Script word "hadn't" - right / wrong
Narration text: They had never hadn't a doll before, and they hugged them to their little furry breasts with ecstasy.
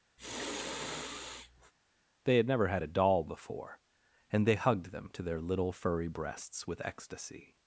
wrong